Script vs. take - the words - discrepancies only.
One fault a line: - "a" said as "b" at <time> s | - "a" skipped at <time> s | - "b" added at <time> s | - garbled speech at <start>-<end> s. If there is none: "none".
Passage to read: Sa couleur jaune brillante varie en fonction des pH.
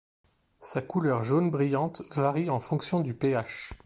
- "des" said as "du" at 3.0 s